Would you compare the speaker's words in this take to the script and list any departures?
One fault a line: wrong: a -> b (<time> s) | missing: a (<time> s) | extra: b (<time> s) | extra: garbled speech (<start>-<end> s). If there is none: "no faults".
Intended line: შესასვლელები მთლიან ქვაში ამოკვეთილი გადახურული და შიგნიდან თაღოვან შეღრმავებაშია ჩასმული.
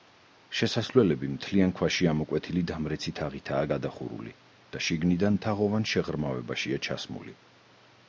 extra: დამრეცი თაღითაა (2.7 s)